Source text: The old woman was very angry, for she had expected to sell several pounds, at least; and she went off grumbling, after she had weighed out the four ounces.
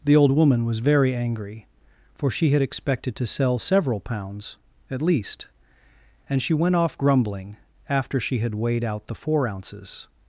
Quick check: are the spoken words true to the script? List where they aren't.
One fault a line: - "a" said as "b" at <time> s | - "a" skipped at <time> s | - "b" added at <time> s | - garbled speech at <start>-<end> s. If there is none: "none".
none